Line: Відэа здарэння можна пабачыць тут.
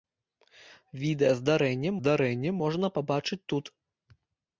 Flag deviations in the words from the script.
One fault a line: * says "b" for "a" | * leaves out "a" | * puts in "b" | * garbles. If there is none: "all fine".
* puts in "здарэння"